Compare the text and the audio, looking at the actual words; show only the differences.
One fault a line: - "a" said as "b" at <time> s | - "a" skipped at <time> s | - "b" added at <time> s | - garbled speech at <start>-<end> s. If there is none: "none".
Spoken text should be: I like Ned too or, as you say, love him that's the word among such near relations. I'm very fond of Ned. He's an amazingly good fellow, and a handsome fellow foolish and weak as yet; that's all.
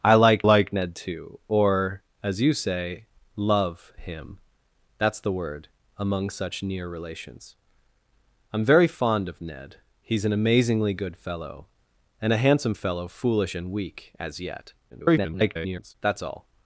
- "like" added at 0.4 s
- garbled speech at 14.9-15.9 s